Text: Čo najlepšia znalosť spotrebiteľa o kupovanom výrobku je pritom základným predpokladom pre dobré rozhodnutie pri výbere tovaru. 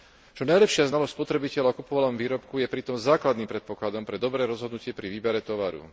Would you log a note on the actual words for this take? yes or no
no